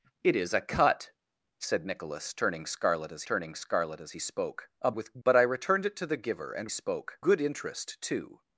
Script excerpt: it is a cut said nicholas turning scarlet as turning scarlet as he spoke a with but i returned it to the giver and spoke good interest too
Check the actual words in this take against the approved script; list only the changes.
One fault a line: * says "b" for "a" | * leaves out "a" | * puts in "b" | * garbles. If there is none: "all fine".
all fine